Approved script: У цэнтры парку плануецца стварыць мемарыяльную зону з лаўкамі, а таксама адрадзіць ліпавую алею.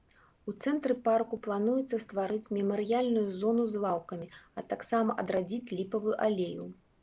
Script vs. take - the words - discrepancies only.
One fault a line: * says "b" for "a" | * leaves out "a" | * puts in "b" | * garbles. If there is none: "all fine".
all fine